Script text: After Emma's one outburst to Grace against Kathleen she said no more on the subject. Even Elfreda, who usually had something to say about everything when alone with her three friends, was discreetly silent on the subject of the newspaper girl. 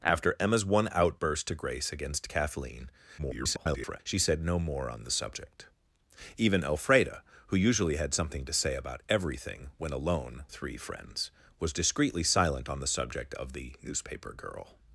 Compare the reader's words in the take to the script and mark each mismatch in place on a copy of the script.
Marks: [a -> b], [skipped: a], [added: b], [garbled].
After Emma's one outburst to Grace against Kathleen [garbled] she said no more on the subject. Even Elfreda, who usually had something to say about everything when alone [skipped: with her] three friends, was discreetly silent on the subject of the newspaper girl.